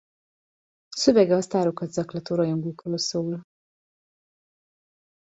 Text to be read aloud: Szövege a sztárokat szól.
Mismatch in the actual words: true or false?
true